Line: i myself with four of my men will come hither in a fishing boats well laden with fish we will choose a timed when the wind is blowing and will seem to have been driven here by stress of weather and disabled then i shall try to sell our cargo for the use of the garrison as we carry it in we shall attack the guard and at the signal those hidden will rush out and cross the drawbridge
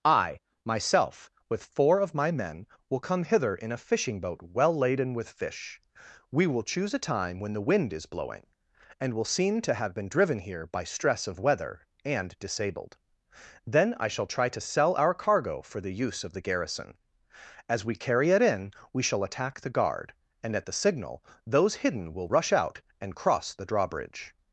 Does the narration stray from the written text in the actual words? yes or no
yes